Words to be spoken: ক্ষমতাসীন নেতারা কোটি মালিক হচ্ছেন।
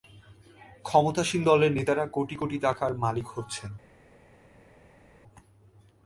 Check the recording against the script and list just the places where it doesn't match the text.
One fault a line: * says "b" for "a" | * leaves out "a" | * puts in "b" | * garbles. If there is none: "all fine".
* puts in "দলের"
* puts in "কোটি টাকার"